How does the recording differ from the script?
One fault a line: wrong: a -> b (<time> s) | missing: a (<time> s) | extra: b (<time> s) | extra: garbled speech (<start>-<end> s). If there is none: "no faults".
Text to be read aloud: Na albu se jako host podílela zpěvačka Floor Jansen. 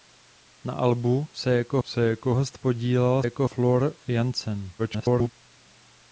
extra: se jako (1.8 s)
wrong: zpěvačka -> jako (3.2 s)
extra: garbled speech (4.8-5.3 s)